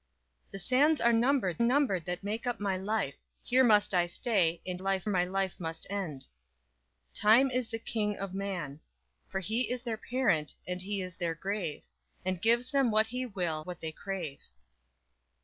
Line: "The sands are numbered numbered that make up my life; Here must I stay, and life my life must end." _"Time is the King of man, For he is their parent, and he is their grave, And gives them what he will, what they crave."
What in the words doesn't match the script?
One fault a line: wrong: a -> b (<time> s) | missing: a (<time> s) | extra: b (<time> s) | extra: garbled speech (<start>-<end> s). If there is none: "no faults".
no faults